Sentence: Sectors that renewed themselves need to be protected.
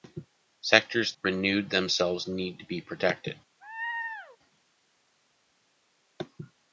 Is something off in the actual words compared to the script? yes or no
yes